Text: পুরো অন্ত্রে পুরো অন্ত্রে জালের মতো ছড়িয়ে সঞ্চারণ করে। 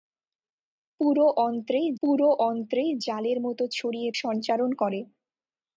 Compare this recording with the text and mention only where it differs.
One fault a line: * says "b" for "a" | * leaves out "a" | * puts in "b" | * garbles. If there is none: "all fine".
all fine